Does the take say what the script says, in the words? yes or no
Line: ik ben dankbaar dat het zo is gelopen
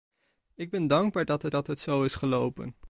no